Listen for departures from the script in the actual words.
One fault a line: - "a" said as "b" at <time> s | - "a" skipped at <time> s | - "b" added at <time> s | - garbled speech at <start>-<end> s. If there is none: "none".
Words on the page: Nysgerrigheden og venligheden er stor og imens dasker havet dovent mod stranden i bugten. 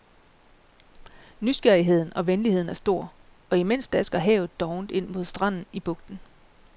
- "ind" added at 4.9 s